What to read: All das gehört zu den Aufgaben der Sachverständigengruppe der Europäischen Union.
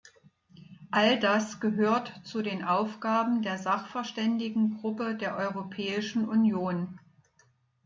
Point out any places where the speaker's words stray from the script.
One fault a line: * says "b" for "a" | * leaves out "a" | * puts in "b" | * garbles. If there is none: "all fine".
all fine